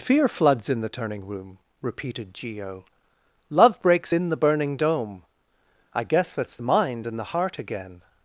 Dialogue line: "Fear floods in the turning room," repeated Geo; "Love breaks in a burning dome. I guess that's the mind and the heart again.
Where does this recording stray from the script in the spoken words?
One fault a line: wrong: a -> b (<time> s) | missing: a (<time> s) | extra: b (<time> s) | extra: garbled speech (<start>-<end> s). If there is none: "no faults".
wrong: a -> the (4.3 s)